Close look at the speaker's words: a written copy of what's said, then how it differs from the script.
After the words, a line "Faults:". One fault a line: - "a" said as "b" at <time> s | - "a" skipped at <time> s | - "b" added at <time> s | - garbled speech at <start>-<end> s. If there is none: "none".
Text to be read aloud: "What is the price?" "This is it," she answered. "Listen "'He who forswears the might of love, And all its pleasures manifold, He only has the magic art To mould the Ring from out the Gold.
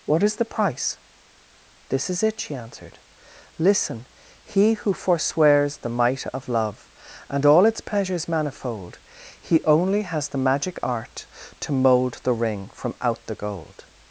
"What is the price?" "This is it," she answered. "Listen "'He who forswears the might of love, And all its pleasures manifold, He only has the magic art To mould the Ring from out the Gold.
Faults:
none